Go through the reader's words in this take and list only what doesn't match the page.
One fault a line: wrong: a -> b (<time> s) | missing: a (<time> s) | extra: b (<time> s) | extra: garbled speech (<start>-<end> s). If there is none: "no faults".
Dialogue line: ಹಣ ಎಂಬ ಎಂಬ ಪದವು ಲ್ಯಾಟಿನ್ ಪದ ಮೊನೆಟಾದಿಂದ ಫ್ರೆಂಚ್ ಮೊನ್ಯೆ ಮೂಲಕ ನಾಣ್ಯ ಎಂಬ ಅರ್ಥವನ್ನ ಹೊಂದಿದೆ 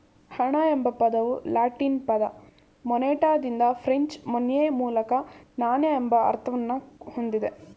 missing: ಎಂಬ (0.9 s)